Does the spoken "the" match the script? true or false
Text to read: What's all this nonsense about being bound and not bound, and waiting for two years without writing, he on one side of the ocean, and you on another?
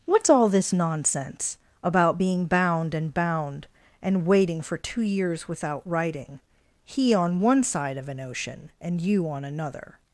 false